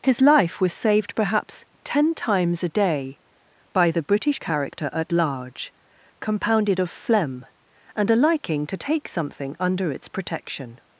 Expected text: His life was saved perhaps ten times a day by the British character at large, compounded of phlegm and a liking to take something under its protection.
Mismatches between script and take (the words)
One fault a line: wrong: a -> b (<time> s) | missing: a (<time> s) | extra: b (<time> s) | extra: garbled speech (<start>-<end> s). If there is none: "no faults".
no faults